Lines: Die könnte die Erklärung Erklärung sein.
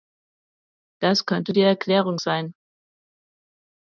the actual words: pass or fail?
fail